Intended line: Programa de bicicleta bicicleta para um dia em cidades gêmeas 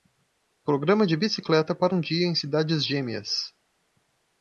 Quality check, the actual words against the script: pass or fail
fail